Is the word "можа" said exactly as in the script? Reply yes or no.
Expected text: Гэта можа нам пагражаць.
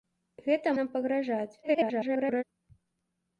no